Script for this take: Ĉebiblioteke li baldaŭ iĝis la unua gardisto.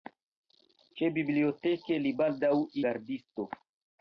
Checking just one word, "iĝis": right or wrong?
wrong